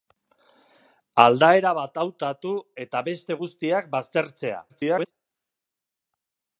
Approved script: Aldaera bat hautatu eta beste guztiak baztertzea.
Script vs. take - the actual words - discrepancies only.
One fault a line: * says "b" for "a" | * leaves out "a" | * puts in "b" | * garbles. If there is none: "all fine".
* garbles